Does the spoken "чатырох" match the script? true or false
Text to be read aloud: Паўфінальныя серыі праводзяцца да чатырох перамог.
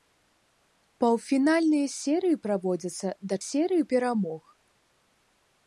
false